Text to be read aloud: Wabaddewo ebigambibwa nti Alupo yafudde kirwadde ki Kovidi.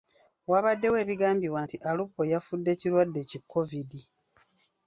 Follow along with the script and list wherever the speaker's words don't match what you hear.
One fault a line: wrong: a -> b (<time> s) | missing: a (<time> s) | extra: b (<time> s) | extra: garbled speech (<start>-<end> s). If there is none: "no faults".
no faults